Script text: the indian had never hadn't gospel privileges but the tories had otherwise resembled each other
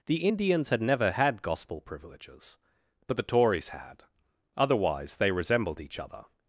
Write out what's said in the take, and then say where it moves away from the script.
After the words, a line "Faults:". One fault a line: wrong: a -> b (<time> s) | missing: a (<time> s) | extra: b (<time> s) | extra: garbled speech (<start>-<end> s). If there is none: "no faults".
the indians had never had gospel privileges but the tories had otherwise they resembled each other
Faults:
wrong: indian -> indians (0.3 s)
wrong: hadn't -> had (1.1 s)
extra: they (5.2 s)